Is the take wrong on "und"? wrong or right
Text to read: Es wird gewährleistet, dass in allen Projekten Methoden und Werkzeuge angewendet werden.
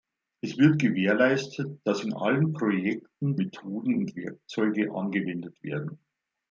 right